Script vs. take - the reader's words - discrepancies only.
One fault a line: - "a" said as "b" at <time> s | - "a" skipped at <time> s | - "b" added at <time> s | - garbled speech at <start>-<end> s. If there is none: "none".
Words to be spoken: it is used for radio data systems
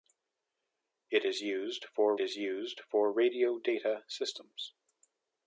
- "is used for" added at 2.2 s